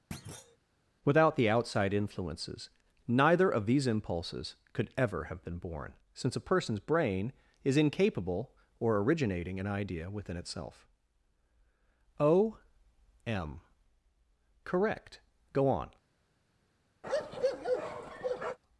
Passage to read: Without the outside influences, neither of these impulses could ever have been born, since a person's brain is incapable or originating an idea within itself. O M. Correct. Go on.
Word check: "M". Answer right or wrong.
right